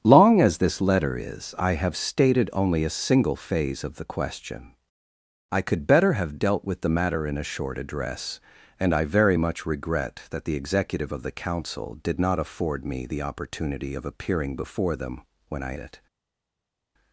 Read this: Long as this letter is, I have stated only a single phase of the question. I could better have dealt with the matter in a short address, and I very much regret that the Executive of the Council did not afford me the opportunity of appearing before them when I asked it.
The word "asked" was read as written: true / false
false